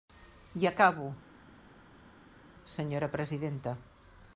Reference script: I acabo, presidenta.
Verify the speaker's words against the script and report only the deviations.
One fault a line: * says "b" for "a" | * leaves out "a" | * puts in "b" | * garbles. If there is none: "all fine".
* puts in "senyora"